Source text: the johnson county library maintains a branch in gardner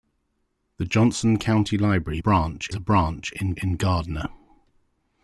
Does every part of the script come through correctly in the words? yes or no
no